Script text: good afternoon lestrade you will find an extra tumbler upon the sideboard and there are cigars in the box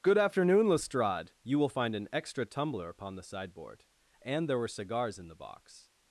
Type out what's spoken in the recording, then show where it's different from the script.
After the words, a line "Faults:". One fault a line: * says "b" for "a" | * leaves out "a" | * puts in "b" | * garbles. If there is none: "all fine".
good afternoon lestrade you will find an extra tumbler upon the sideboard and there were cigars in the box
Faults:
* says "were" for "are"